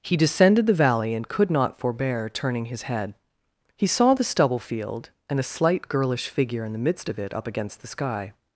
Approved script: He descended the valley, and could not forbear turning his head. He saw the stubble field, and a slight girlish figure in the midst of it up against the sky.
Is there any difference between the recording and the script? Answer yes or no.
no